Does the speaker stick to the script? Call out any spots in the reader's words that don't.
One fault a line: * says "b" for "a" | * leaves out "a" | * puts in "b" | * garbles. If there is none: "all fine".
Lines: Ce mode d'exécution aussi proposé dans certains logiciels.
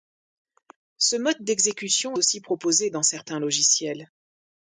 all fine